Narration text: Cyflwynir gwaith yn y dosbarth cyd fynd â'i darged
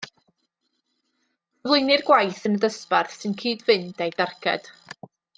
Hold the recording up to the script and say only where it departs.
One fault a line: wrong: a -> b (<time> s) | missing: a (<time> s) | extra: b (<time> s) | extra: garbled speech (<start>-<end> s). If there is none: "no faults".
extra: sy'n (3.2 s)